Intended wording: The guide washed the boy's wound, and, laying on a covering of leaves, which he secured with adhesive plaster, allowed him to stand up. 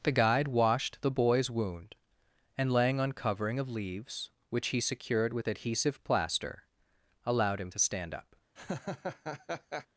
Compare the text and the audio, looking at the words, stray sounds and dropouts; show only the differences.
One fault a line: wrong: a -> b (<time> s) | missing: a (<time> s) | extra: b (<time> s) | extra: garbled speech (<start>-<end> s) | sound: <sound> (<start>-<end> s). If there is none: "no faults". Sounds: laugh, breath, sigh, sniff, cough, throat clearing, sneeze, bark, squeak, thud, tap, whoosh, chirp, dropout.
missing: a (3.1 s)
sound: laugh (8.6-9.9 s)